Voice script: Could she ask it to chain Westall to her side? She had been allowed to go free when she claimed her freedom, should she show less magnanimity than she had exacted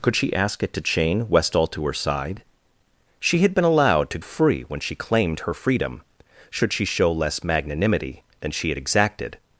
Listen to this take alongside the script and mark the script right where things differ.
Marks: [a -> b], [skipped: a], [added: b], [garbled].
Could she ask it to chain Westall to her side? She had been allowed to [skipped: go] free when she claimed her freedom, should she show less magnanimity than she had exacted